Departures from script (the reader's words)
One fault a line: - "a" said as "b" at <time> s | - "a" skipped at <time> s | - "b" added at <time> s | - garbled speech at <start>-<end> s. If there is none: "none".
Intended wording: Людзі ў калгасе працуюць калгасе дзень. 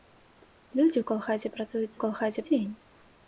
none